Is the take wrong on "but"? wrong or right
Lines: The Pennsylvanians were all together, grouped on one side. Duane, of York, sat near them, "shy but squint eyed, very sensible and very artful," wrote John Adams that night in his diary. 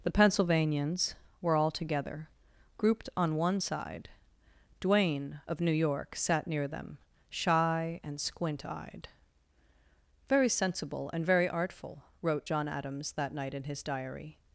wrong